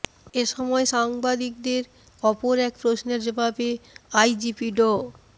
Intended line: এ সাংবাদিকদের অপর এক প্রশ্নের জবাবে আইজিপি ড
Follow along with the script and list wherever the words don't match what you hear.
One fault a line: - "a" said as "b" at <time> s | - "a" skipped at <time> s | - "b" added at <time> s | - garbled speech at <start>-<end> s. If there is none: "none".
- "সময়" added at 0.5 s